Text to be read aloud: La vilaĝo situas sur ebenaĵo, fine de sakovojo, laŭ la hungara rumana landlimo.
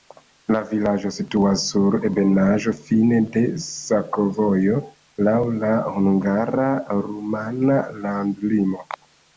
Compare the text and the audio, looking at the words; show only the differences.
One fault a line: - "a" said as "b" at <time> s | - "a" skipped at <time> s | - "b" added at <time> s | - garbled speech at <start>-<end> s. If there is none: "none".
none